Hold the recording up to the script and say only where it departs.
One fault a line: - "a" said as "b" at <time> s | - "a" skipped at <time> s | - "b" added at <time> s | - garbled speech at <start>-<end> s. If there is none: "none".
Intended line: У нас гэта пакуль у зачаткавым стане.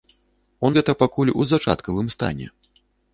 - "нас" skipped at 0.7 s